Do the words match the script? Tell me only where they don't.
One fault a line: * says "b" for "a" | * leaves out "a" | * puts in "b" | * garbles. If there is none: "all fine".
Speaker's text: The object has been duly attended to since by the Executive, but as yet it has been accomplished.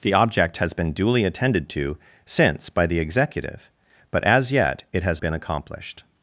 all fine